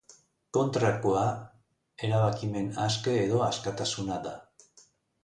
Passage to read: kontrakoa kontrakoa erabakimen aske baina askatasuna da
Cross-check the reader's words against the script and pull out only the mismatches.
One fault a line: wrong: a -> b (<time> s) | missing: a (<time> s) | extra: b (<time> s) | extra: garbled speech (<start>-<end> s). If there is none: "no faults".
missing: kontrakoa (1.2 s)
wrong: baina -> edo (3.3 s)